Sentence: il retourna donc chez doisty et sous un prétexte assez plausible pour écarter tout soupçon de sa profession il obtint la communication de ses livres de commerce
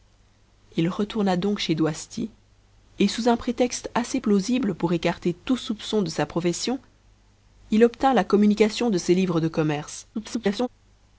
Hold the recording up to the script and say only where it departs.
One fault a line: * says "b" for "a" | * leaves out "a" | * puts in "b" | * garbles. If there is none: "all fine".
* garbles